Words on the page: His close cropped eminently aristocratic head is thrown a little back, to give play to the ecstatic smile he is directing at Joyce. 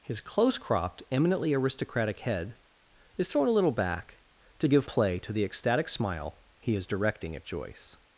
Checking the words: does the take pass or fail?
pass